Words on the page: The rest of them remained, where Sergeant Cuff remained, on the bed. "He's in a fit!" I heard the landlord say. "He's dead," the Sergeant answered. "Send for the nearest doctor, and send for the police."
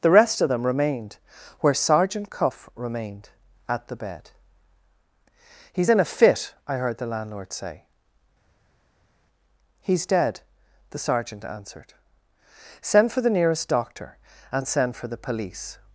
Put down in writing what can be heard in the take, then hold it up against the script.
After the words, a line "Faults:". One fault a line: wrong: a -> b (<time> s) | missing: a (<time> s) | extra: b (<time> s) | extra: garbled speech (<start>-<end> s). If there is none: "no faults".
The rest of them remained, where Sergeant Cuff remained, at the bed. "He's in a fit!" I heard the landlord say. "He's dead," the Sergeant answered. "Send for the nearest doctor, and send for the police."
Faults:
wrong: on -> at (3.7 s)